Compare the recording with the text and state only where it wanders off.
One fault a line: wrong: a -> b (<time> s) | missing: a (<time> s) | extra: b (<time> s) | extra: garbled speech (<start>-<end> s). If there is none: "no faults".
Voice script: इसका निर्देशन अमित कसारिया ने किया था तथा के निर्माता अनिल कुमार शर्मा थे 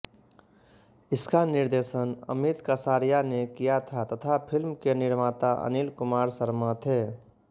extra: फ़िल्म (4.5 s)